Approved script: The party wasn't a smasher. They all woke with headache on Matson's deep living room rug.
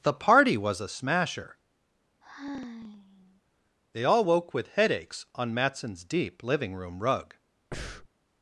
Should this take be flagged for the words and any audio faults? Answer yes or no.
yes